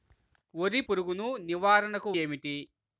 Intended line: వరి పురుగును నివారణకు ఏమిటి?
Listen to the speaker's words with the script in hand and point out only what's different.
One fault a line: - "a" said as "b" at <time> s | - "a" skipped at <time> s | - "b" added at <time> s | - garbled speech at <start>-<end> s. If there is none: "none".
none